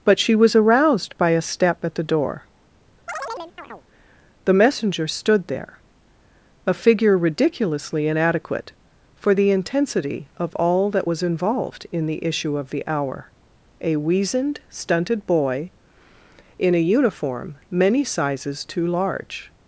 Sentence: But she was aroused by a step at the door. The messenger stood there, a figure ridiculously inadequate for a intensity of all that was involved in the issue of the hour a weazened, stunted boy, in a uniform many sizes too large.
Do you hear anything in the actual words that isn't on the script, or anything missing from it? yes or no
yes